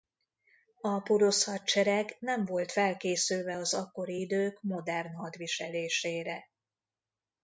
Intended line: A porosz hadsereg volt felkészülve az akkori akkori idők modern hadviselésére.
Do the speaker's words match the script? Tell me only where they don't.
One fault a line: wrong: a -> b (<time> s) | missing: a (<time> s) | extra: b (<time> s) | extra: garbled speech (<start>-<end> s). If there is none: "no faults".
extra: nem (2.2 s)
missing: akkori (4.2 s)